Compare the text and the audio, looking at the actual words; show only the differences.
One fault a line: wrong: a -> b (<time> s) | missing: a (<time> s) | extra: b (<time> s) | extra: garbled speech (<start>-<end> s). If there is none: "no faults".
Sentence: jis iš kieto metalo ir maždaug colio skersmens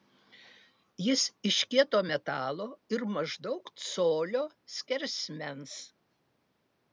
no faults